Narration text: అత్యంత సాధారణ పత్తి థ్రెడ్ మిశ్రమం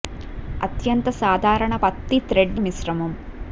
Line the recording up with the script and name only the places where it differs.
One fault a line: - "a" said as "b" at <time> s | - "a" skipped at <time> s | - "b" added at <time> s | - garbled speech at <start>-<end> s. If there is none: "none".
none